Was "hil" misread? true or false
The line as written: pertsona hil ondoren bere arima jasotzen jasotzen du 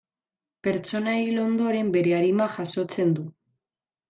false